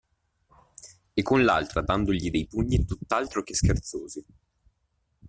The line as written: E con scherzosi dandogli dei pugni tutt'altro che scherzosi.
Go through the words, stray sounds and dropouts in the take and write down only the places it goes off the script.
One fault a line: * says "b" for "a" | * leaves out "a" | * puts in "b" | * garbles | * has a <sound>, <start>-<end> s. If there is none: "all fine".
* says "l'altra" for "scherzosi"